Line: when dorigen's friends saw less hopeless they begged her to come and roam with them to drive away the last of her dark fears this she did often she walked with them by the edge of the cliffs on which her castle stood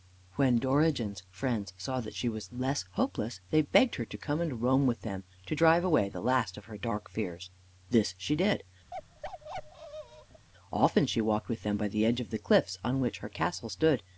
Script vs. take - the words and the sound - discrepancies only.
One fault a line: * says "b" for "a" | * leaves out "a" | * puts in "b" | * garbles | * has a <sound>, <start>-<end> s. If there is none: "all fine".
* puts in "that she was"
* has a bark, 8.9-10.5 s